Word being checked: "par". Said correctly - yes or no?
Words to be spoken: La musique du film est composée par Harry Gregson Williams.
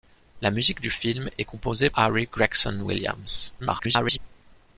no